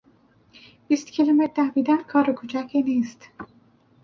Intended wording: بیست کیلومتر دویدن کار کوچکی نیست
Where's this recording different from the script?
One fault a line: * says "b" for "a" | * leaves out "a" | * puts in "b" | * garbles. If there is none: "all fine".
all fine